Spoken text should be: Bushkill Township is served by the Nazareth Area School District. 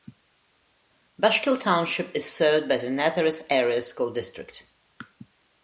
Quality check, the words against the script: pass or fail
pass